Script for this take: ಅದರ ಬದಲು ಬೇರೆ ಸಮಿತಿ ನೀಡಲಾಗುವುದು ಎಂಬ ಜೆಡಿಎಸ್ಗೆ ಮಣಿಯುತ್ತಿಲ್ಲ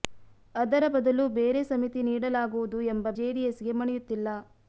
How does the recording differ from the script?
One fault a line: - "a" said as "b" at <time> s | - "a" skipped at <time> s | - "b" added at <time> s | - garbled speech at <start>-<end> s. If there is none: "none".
none